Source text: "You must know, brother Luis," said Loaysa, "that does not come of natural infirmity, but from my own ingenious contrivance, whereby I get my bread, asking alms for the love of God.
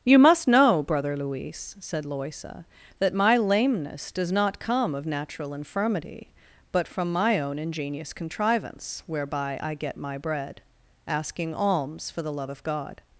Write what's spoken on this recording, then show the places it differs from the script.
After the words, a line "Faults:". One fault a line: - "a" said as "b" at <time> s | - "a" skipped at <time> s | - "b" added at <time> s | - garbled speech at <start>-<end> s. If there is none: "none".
"You must know, brother Luis," said Loaysa, "that my lameness does not come of natural infirmity, but from my own ingenious contrivance, whereby I get my bread, asking alms for the love of God.
Faults:
- "my lameness" added at 3.1 s